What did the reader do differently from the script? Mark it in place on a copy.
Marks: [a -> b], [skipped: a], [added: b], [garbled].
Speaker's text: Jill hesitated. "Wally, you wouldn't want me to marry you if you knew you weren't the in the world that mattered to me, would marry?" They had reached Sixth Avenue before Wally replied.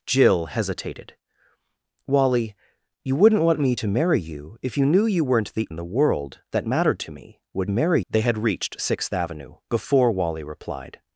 Jill hesitated. "Wally, you wouldn't want me to marry you if you knew you weren't the in the world that mattered to me, would marry?" They had reached Sixth Avenue before Wally replied.